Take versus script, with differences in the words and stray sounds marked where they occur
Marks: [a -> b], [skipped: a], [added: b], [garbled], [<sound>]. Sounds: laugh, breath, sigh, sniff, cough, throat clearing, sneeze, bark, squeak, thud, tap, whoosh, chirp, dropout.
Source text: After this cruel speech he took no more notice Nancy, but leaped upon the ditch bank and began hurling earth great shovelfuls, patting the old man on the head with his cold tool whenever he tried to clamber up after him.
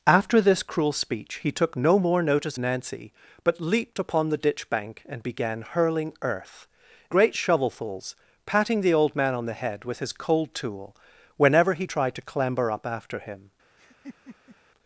After this cruel speech he took no more notice Nancy, but leaped upon the ditch bank and began hurling earth great shovelfuls, patting the old man on the head with his cold tool whenever he tried to clamber up after him. [laugh]